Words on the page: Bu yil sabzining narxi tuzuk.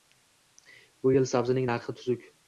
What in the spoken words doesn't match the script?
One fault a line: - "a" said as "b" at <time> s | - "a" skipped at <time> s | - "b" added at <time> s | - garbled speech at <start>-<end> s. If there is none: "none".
none